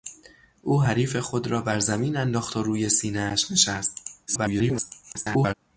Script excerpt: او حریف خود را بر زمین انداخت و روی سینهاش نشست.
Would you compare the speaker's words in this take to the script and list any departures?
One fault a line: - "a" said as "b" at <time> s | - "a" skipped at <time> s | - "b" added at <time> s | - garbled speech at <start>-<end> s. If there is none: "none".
- garbled speech at 4.3-5.5 s